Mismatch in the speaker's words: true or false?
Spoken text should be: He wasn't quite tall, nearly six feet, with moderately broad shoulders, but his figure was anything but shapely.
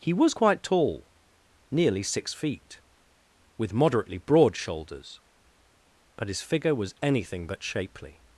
true